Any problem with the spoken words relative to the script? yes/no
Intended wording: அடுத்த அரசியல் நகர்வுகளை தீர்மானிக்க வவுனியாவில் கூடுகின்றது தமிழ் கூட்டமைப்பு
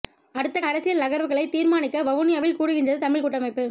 no